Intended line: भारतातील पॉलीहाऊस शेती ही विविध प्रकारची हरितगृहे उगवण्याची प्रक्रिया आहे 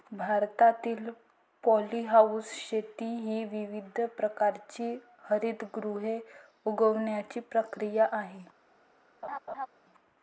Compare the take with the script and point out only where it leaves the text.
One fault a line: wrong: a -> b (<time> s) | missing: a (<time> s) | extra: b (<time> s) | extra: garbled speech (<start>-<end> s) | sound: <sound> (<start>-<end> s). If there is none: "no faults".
sound: laugh (9.2-9.7 s)